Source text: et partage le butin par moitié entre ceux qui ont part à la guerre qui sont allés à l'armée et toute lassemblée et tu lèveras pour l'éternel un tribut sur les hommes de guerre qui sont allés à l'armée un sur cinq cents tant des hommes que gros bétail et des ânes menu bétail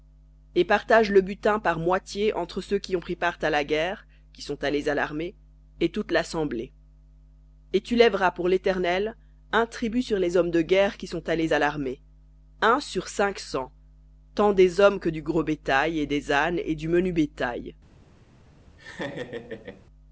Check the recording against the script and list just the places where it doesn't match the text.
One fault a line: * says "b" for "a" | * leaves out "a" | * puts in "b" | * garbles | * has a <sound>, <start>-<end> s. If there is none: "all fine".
* puts in "pris"
* puts in "du"
* puts in "et du"
* has a laugh, 18.8-19.9 s